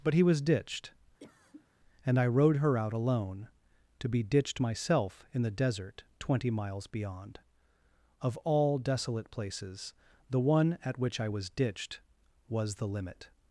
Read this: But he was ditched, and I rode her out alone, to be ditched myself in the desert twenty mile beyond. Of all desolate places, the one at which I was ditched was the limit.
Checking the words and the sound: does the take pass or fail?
fail